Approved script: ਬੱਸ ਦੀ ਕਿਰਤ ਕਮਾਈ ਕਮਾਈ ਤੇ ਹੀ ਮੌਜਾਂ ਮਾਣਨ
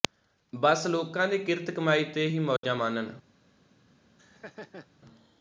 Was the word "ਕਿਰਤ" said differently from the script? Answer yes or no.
no